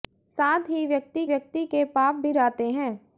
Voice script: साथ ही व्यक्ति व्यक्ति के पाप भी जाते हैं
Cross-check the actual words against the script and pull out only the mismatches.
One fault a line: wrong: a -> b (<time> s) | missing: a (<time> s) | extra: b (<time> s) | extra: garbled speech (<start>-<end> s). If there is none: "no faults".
no faults